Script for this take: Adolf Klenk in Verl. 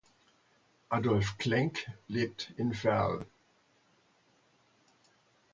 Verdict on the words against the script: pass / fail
fail